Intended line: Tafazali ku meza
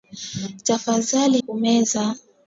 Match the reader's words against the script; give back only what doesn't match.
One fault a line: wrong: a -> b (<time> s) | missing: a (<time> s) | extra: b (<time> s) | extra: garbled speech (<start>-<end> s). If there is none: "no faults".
no faults